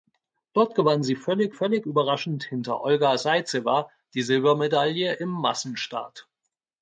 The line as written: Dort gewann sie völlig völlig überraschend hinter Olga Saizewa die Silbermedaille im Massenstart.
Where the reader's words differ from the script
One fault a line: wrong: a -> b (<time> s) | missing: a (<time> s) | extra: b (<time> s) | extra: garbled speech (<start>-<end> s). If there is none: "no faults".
no faults